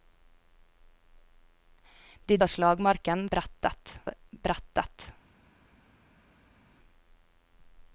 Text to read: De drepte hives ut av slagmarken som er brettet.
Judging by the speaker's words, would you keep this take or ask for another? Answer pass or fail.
fail